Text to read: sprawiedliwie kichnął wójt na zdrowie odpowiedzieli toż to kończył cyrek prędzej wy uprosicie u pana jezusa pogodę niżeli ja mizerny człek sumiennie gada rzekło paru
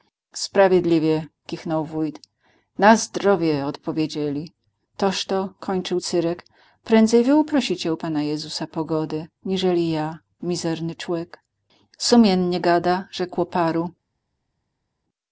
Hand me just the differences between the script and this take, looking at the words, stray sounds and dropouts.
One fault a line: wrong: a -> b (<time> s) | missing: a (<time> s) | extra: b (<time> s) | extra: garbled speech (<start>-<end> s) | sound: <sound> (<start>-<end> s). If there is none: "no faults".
no faults